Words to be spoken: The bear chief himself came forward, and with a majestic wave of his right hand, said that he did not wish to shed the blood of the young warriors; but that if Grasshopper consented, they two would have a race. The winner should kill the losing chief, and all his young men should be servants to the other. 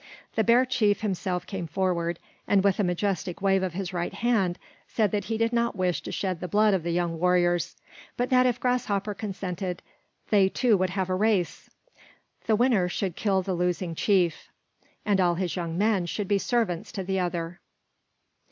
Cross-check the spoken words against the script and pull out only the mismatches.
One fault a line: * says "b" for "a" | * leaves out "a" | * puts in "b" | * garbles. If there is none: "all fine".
all fine